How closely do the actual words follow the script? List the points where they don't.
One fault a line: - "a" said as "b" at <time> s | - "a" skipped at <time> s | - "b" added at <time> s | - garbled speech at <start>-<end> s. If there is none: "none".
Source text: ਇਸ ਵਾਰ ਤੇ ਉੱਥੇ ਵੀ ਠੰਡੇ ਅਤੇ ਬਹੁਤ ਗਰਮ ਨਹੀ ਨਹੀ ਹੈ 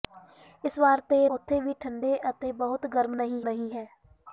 none